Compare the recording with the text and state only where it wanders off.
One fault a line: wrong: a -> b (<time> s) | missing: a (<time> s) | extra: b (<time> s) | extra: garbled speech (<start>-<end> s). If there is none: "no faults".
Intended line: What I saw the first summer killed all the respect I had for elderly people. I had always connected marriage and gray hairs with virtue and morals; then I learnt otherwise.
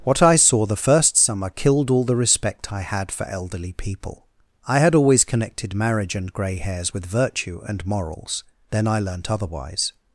no faults